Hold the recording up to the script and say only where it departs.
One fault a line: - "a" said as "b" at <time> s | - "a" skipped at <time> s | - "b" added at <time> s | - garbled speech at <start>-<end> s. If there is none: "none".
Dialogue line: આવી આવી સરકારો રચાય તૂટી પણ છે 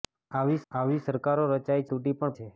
none